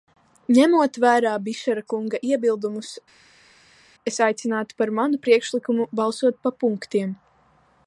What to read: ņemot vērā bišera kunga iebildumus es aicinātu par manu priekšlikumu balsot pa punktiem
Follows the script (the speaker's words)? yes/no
yes